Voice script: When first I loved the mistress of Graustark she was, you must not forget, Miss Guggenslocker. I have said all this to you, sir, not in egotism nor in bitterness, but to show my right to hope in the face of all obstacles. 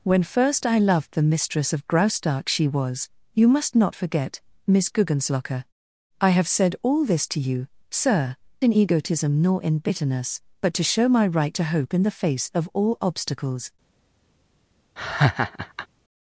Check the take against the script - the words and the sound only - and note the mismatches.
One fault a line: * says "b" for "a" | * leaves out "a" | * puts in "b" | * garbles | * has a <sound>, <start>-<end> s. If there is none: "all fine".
* leaves out "not"
* has a laugh, 15.0-15.9 s